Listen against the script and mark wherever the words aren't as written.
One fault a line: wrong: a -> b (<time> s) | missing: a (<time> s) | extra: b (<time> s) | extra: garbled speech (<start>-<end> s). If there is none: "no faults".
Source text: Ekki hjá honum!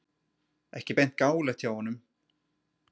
extra: beint gáfulegt (1.0 s)